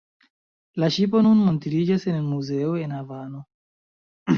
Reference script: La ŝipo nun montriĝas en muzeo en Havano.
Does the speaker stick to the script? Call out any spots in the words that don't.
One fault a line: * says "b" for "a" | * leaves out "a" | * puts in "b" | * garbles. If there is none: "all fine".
all fine